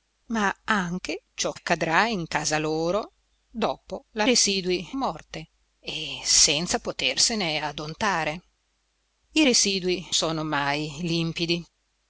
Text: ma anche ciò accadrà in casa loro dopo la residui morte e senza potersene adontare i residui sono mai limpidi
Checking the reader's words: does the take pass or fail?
pass